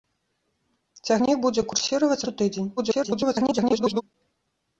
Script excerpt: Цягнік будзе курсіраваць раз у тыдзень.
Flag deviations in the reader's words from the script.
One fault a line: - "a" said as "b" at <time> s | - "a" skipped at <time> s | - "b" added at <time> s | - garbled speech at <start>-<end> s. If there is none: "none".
- "раз" skipped at 2.3 s
- garbled speech at 2.8-4.0 s